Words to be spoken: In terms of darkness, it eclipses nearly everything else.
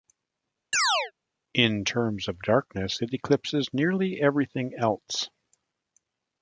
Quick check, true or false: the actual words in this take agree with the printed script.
true